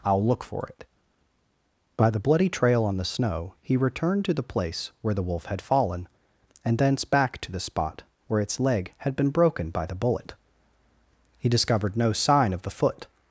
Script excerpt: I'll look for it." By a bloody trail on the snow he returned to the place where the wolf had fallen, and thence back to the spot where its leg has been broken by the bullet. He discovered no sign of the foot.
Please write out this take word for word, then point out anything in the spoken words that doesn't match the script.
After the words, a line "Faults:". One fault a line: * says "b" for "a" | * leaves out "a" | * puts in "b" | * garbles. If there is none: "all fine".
I'll look for it." By the bloody trail on the snow he returned to the place where the wolf had fallen, and thence back to the spot where its leg had been broken by the bullet. He discovered no sign of the foot.
Faults:
* says "the" for "a"
* says "had" for "has"